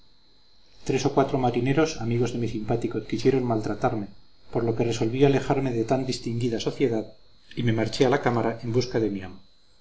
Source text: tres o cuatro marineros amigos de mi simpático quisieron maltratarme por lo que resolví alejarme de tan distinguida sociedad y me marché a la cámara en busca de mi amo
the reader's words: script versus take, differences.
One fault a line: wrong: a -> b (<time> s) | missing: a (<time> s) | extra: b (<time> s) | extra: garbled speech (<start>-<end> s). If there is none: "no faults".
no faults